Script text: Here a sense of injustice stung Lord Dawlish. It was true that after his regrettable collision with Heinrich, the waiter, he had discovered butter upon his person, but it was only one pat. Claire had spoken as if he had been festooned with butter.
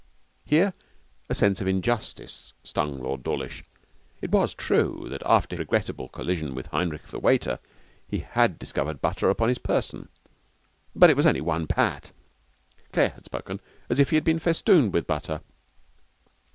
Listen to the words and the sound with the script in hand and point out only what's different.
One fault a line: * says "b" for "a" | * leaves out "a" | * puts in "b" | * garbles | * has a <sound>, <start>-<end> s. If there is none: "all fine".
* leaves out "his"